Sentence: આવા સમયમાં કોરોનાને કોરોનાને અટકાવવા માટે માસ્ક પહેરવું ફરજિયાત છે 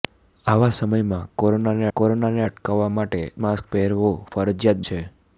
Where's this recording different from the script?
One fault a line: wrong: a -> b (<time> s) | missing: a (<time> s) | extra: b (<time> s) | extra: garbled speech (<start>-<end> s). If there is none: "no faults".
no faults